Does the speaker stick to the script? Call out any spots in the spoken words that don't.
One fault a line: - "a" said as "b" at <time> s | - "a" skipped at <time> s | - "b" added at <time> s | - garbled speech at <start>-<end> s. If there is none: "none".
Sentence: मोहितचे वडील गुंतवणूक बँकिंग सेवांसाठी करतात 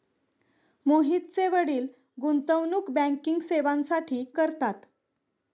none